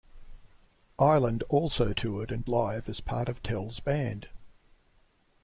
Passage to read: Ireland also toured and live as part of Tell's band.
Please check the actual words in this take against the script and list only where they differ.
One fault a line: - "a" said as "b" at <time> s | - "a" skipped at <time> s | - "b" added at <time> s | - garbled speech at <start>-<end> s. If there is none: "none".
none